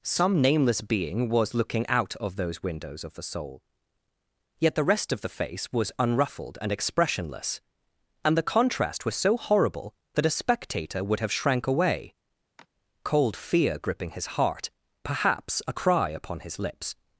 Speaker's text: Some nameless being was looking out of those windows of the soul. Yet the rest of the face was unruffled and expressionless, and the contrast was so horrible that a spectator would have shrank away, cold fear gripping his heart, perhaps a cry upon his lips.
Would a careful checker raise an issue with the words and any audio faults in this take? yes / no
yes